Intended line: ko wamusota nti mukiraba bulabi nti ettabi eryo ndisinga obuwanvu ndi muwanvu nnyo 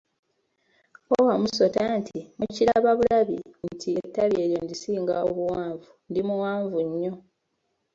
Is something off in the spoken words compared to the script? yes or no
no